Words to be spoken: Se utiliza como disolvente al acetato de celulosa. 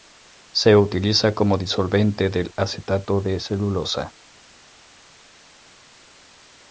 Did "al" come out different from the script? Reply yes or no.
yes